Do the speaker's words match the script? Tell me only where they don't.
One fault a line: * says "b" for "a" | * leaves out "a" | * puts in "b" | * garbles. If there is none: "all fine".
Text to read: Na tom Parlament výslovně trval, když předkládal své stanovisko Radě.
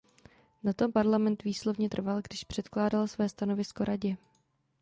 all fine